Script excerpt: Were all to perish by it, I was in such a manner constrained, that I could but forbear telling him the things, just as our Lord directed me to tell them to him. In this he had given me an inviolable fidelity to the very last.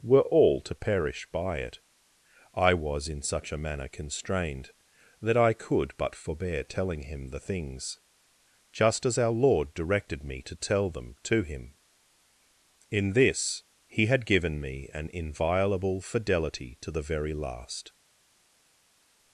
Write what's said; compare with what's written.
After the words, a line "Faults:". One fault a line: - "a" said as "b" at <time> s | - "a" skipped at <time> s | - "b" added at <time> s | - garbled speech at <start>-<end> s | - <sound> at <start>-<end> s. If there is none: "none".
Were all to perish by it, I was in such a manner constrained, that I could but forbear telling him the things, just as our Lord directed me to tell them to him. In this he had given me an inviolable fidelity to the very last.
Faults:
none